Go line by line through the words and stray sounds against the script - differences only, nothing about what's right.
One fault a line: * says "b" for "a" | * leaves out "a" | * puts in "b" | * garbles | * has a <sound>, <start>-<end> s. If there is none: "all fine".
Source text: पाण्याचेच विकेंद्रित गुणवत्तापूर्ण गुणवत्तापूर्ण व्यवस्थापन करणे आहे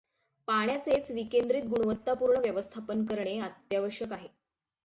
* leaves out "गुणवत्तापूर्ण"
* puts in "अत्यावश्यक"